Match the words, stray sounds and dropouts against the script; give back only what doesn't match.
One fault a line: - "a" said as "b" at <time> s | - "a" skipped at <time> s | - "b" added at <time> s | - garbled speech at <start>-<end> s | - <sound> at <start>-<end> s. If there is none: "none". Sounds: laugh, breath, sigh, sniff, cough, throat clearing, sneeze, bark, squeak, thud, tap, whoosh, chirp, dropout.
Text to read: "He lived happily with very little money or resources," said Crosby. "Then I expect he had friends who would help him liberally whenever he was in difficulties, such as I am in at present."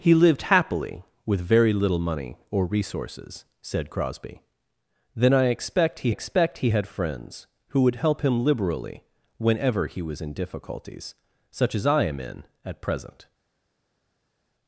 - "expect he" added at 6.1 s